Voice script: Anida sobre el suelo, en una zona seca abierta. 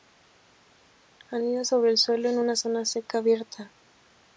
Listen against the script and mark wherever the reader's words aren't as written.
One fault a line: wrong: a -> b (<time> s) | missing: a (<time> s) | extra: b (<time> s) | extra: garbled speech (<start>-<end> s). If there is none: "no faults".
no faults